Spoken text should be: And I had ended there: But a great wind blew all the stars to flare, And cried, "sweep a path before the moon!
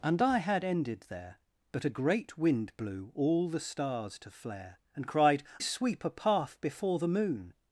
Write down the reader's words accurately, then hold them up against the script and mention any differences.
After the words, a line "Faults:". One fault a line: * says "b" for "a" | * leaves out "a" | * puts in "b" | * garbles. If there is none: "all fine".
And I had ended there: But a great wind blew all the stars to flare, And cried, "sweep a path before the moon!
Faults:
all fine